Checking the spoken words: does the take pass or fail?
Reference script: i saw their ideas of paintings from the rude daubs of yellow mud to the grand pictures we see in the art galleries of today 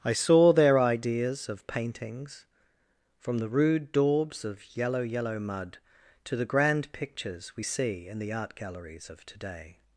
fail